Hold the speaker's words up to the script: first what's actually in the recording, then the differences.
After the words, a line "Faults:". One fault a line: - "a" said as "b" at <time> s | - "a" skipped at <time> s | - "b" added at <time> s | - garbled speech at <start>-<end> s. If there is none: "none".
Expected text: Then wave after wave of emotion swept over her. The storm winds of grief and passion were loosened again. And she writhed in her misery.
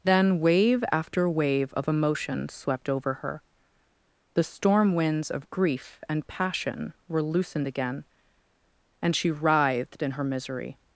Then wave after wave of emotion swept over her. The storm winds of grief and passion were loosened again. And she writhed in her misery.
Faults:
none